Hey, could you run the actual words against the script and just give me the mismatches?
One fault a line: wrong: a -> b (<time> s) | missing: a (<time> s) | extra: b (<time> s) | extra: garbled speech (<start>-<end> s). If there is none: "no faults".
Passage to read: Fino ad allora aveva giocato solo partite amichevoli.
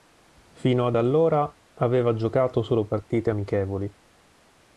no faults